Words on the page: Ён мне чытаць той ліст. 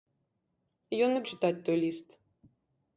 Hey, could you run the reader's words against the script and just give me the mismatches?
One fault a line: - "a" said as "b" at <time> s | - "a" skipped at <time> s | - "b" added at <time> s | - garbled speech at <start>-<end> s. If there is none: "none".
none